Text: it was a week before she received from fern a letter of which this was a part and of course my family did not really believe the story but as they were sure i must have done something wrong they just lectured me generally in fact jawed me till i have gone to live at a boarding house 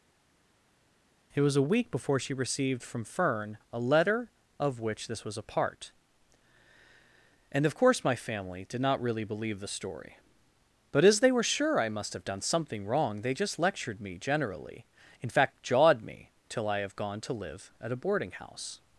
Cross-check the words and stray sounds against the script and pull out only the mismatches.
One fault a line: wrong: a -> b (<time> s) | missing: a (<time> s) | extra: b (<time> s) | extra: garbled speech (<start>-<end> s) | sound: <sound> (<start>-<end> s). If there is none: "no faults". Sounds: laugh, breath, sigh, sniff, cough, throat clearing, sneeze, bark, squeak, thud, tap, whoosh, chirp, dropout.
no faults